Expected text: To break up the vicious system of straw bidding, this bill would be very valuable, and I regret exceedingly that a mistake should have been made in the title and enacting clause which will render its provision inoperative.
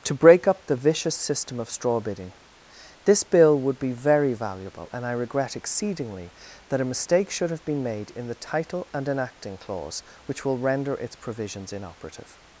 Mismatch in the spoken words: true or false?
true